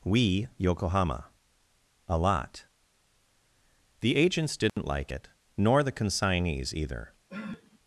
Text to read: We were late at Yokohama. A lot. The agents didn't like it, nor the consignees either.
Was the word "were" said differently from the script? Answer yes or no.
yes